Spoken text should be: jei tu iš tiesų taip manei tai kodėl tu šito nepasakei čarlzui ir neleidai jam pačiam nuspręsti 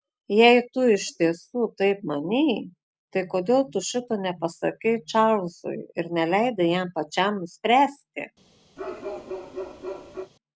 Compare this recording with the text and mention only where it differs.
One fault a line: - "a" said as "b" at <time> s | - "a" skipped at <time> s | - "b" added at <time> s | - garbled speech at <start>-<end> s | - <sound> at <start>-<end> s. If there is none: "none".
- bark at 8.8-10.3 s